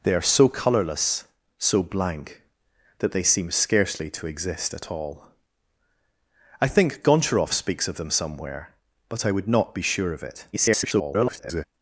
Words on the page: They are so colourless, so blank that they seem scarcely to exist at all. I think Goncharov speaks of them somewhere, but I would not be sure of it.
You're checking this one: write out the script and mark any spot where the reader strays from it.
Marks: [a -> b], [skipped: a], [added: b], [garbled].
They are so colourless, so blank that they seem scarcely to exist at all. I think Goncharov speaks of them somewhere, but I would not be sure of it. [garbled]